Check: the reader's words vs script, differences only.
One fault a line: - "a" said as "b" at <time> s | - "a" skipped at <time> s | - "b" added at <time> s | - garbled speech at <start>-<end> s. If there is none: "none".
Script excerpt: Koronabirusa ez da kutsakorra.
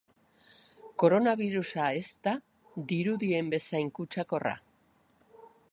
- "dirudien bezain" added at 2.9 s